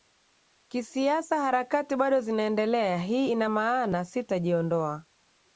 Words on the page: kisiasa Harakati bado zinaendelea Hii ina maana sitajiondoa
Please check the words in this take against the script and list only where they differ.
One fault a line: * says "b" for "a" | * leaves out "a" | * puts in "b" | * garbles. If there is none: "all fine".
all fine